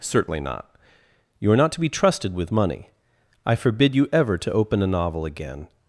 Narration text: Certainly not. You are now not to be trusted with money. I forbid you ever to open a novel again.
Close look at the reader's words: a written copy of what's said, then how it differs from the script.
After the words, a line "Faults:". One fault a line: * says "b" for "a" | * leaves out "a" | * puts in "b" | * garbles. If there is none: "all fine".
Certainly not. You are not to be trusted with money. I forbid you ever to open a novel again.
Faults:
* leaves out "now"